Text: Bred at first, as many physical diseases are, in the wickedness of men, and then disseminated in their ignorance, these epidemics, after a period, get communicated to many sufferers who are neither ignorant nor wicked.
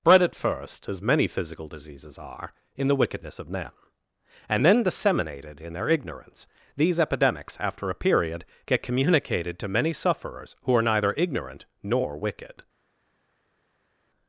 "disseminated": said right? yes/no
yes